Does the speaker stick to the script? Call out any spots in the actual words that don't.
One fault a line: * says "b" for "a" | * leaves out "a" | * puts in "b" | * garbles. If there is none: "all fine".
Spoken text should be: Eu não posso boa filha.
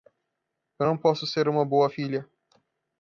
* puts in "ser uma"